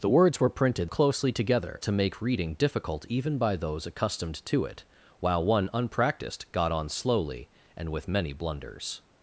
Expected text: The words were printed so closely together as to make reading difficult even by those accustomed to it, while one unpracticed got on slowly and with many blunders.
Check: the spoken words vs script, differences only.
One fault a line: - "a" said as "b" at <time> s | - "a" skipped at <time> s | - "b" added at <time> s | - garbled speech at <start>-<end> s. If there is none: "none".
- "so" skipped at 0.9 s
- "as" skipped at 1.8 s